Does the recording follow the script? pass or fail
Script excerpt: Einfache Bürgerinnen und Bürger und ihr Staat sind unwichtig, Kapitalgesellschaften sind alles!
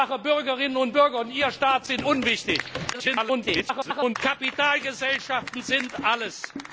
fail